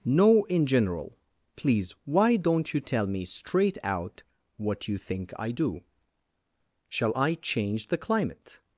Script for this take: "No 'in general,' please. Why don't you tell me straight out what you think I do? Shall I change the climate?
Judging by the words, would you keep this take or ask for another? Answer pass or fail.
pass